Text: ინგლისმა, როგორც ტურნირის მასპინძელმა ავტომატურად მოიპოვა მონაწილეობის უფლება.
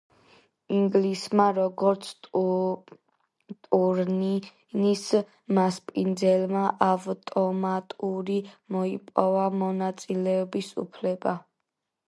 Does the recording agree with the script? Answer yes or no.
yes